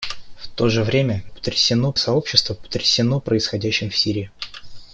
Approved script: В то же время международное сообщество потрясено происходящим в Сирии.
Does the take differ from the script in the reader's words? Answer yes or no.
yes